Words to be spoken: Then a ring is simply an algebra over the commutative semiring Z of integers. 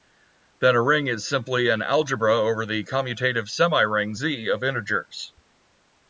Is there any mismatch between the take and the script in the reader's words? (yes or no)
no